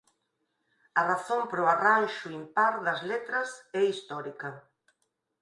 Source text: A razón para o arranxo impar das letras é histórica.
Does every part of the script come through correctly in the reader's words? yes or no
yes